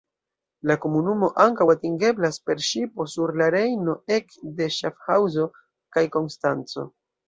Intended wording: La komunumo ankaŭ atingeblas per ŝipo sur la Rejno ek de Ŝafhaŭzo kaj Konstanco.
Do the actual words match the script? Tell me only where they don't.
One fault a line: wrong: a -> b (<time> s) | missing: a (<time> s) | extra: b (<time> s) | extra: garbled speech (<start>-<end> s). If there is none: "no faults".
no faults